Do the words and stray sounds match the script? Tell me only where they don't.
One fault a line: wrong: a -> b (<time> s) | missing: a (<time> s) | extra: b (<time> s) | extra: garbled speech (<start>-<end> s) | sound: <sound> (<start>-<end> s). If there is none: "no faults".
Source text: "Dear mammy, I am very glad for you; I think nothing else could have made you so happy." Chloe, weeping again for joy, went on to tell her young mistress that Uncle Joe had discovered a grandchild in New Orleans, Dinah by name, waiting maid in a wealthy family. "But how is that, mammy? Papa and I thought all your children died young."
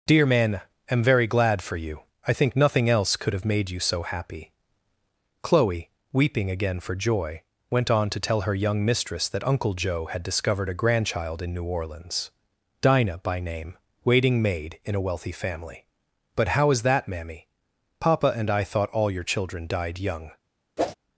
wrong: mammy I -> man (0.2 s)
sound: whoosh (20.8-20.9 s)